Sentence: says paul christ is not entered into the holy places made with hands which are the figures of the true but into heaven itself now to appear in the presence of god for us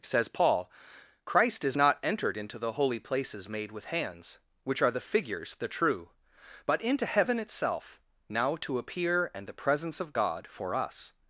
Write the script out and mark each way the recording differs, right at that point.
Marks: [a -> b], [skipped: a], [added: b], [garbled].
says paul christ is not entered into the holy places made with hands which are the figures [skipped: of] the true but into heaven itself now to appear [in -> and] the presence of god for us